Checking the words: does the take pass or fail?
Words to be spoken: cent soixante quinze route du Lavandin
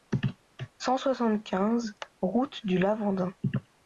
pass